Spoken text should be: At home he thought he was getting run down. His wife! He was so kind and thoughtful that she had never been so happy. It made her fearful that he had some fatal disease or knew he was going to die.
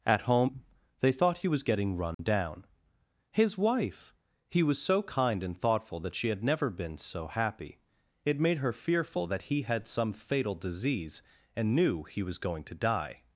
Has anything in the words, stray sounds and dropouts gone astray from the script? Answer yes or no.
yes